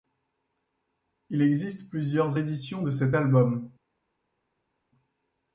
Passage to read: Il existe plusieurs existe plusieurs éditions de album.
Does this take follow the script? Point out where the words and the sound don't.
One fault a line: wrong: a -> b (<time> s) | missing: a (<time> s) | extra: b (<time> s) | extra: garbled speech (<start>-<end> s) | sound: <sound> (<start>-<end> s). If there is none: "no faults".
missing: existe plusieurs (2.4 s)
extra: cet (2.9 s)